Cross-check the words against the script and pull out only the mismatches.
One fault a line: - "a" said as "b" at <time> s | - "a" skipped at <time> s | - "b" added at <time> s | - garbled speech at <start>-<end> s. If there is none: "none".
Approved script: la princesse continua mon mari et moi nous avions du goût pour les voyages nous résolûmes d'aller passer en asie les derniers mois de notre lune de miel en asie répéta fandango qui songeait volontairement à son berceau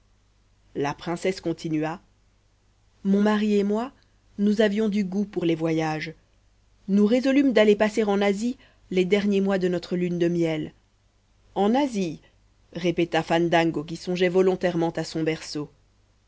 none